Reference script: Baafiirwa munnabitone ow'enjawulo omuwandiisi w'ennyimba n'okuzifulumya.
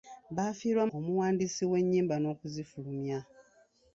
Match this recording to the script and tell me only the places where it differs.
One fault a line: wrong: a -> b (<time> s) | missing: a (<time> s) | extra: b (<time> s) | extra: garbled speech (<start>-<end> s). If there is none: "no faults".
missing: munnabitone ow'enjawulo (0.8 s)